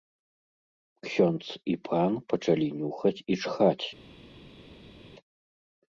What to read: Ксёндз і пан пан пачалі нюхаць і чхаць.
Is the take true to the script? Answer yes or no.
no